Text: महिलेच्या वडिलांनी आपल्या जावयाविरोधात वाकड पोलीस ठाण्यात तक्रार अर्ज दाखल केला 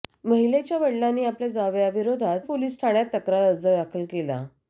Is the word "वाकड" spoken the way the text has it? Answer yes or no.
no